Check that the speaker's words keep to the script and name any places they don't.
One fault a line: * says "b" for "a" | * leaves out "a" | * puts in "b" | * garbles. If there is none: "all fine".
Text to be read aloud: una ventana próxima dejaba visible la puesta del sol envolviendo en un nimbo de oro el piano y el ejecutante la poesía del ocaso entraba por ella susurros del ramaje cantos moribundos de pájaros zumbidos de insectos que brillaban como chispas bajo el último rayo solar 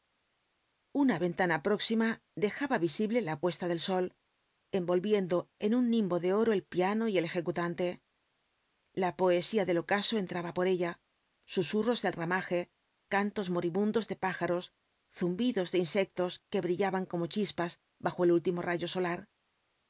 all fine